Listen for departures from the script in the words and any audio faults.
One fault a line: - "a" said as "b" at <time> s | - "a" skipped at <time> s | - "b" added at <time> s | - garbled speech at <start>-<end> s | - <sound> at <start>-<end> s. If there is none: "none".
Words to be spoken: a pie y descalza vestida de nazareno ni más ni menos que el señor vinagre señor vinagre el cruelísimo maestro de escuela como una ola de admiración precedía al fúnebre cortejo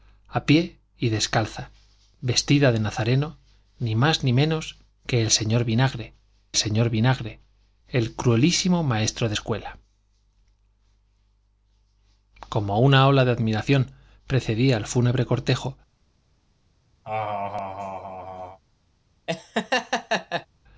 - laugh at 17.0-18.6 s
- laugh at 19.3-20.5 s